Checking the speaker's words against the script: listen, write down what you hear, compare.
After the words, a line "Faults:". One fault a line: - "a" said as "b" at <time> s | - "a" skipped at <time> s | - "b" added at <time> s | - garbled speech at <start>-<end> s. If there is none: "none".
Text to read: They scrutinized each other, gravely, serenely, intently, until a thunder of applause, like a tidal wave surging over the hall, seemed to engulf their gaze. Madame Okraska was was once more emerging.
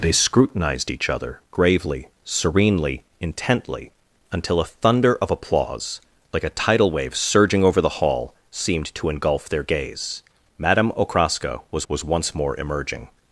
They scrutinized each other, gravely, serenely, intently, until a thunder of applause, like a tidal wave surging over the hall, seemed to engulf their gaze. Madame Okraska was was once more emerging.
Faults:
none